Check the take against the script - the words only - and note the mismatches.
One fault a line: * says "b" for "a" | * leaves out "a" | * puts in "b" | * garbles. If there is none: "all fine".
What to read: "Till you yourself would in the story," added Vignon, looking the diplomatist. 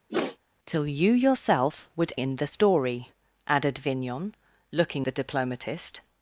all fine